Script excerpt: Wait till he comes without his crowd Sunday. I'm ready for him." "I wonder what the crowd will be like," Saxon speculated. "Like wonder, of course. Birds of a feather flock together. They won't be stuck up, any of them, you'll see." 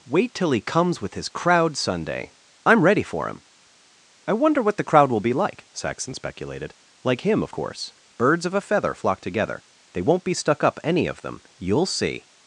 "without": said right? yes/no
no